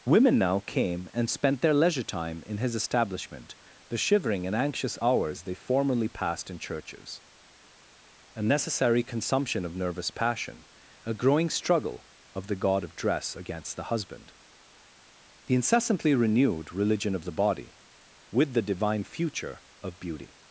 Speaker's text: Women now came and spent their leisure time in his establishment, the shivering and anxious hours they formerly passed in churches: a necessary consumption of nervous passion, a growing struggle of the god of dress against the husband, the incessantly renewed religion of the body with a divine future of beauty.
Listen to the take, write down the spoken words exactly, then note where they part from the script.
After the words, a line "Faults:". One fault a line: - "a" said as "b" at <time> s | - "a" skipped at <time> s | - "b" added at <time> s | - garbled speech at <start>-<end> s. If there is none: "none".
Women now came and spent their leisure time in his establishment, the shivering and anxious hours they formerly passed in churches: a necessary consumption of nervous passion, a growing struggle of the god of dress against the husband, the incessantly renewed religion of the body with the divine future of beauty.
Faults:
- "a" said as "the" at 18.5 s